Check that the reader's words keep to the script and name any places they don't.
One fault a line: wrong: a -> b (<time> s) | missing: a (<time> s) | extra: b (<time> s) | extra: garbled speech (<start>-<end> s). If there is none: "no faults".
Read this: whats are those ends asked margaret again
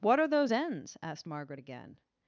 wrong: whats -> what (0.0 s)